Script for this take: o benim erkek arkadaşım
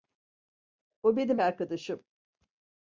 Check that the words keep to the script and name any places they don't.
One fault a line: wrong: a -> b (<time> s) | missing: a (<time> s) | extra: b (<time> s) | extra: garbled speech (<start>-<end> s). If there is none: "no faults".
missing: erkek (1.4 s)